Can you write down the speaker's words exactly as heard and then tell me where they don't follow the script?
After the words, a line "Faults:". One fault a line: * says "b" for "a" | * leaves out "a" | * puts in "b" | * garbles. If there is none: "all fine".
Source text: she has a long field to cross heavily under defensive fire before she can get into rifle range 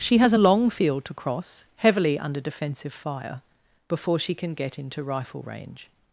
she has a long field to cross heavily under defensive fire before she can get into rifle range
Faults:
all fine